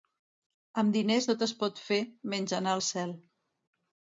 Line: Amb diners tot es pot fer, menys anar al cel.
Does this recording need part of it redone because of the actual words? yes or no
no